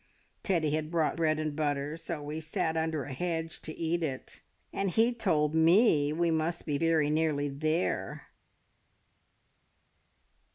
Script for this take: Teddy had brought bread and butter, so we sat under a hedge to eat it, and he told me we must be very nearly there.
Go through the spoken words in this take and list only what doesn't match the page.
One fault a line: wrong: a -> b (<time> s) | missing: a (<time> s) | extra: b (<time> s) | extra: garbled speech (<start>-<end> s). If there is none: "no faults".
no faults